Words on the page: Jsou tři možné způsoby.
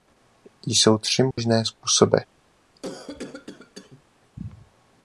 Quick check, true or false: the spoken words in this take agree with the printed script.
true